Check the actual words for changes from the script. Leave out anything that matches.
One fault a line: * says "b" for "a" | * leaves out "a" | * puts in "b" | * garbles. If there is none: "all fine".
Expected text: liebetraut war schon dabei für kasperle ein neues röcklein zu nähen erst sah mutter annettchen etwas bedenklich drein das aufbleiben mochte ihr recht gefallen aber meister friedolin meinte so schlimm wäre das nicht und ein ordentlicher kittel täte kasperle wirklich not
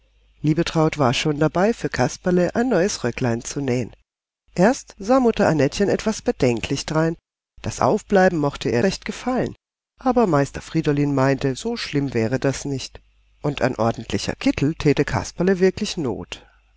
all fine